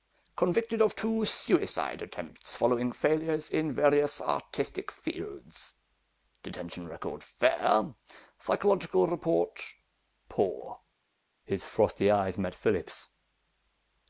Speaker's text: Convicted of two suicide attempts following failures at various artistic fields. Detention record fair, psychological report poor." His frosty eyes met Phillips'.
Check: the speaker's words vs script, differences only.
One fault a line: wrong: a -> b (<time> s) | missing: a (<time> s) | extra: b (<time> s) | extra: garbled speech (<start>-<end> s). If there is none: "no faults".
wrong: at -> in (3.5 s)